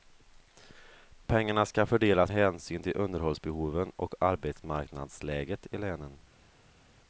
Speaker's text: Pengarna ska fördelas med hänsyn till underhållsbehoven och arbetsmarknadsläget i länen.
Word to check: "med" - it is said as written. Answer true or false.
false